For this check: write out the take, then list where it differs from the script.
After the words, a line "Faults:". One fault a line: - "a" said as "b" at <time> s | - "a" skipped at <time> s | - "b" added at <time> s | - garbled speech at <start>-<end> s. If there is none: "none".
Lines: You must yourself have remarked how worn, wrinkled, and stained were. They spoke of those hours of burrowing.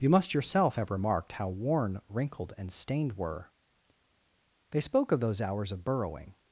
You must yourself have remarked how worn, wrinkled, and stained were. They spoke of those hours of burrowing.
Faults:
none